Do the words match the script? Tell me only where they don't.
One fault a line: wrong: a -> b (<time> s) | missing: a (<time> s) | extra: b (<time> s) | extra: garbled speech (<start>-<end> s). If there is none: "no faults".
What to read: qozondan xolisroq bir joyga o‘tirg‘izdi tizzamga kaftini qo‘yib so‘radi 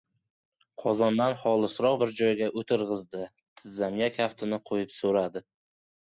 no faults